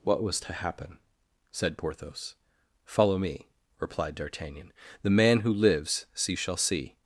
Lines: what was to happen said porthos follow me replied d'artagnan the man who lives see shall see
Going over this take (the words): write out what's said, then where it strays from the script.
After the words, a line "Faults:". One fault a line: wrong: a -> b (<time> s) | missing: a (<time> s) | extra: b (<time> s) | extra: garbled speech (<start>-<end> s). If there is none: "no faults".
what was to happen said porthos follow me replied d'artagnan the man who lives see shall see
Faults:
no faults